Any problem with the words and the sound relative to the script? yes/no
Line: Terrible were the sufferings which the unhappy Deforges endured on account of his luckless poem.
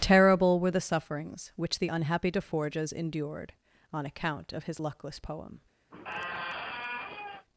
yes